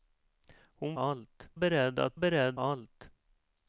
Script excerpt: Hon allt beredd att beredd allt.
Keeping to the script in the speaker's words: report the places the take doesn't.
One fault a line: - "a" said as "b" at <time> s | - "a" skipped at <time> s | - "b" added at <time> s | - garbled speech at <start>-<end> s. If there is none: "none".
none